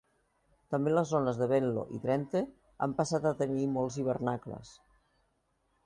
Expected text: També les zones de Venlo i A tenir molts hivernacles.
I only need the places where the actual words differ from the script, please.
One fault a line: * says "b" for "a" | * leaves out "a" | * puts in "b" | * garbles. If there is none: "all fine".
* puts in "Drenthe han passat"